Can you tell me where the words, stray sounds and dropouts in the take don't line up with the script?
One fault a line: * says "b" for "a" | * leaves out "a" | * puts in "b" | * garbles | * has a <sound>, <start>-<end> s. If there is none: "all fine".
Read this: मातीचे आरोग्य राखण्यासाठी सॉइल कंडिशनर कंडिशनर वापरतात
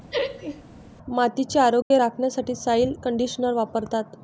* has a laugh, 0.1-0.6 s
* has a dropout, 1.8-1.9 s
* leaves out "कंडिशनर"